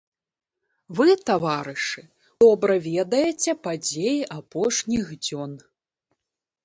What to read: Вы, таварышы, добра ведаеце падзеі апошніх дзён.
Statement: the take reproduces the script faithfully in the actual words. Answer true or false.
true